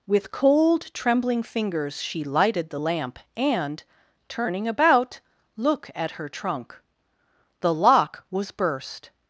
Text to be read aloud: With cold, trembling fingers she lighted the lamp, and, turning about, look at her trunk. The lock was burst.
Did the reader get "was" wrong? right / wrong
right